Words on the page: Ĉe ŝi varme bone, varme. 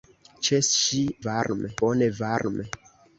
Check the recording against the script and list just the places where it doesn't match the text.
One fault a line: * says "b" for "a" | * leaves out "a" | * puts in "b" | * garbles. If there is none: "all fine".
all fine